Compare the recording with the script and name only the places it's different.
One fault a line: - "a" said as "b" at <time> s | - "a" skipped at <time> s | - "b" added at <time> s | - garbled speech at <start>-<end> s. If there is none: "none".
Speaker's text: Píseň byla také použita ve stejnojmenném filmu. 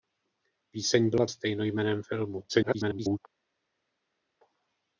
- "také použita ve" skipped at 1.2 s
- garbled speech at 2.5-3.2 s